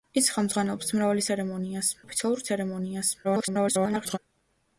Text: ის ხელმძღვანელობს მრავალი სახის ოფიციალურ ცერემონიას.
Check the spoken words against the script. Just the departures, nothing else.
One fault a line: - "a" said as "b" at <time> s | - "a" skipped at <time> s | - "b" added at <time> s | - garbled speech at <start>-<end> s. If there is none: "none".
- "სახის" said as "ცერემონიას" at 1.3 s
- garbled speech at 3.2-4.2 s